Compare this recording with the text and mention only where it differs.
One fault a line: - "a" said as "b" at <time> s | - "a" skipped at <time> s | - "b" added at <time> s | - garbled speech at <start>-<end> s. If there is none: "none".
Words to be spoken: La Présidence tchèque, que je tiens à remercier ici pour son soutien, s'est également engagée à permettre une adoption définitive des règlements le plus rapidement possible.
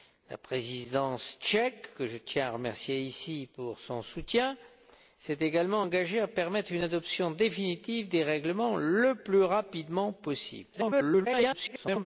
- garbled speech at 10.7-12.1 s